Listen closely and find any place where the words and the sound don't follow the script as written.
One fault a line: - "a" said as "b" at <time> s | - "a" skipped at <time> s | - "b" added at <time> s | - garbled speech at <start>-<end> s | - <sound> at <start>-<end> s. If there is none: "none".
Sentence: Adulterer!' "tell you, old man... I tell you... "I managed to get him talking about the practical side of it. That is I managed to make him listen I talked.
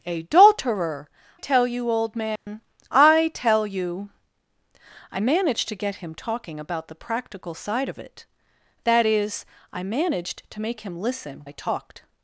- dropout at 2.4-2.5 s